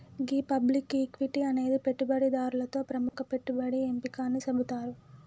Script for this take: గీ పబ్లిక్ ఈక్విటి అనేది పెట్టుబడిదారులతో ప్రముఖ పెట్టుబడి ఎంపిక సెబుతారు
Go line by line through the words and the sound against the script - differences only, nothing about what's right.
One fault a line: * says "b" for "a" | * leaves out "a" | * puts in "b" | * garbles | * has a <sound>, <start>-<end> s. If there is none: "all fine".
* has a dropout, 3.1-3.1 s
* puts in "అని"